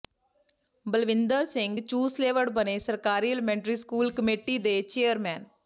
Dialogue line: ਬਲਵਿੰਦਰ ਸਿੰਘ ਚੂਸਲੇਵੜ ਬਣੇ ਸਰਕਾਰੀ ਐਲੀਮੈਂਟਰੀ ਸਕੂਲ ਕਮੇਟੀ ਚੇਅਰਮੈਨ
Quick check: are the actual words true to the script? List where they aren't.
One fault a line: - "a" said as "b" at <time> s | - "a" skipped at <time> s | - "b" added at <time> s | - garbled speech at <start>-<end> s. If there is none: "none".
- "ਦੇ" added at 4.6 s